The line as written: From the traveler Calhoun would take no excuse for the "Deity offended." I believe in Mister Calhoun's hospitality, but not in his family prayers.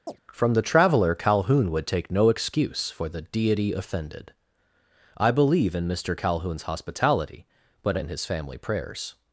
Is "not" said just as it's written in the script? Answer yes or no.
no